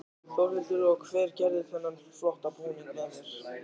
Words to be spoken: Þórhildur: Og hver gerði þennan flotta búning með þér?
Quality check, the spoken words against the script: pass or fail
pass